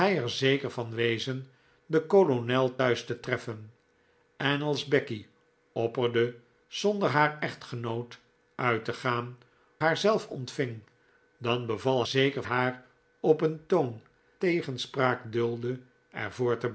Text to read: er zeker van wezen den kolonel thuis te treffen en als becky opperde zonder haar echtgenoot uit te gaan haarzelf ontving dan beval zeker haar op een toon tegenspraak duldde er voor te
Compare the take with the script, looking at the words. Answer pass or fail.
pass